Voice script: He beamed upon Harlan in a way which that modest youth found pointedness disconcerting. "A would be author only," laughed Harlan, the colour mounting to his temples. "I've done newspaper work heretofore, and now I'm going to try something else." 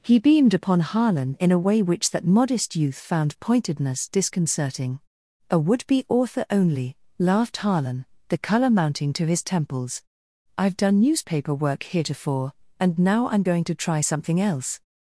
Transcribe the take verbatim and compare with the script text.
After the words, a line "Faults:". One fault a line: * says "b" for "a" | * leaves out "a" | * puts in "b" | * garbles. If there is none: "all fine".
He beamed upon Harlan in a way which that modest youth found pointedness disconcerting. "A would be author only," laughed Harlan, the colour mounting to his temples. "I've done newspaper work heretofore, and now I'm going to try something else."
Faults:
all fine